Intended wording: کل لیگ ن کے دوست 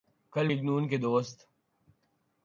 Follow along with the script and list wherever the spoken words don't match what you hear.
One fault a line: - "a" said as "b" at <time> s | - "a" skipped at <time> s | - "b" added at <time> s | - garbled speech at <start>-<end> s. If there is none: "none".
none